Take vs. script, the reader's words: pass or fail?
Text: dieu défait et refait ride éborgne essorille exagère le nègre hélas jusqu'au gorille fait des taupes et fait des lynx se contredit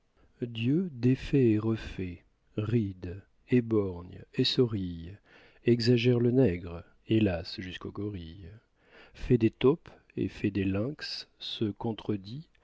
pass